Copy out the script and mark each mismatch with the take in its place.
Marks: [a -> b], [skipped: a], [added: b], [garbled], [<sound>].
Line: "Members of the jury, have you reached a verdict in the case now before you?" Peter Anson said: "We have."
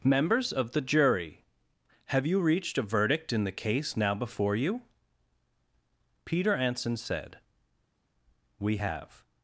"Members of the jury, have you reached a verdict in the case now before you?" Peter Anson said: "We have."